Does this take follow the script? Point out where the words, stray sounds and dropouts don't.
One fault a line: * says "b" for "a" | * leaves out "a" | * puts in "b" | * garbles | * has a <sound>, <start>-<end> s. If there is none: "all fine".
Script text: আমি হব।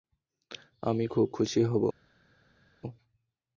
* puts in "খুব খুশি"